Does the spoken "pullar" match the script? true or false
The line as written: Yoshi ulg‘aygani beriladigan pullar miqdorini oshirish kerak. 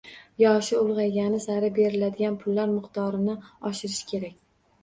true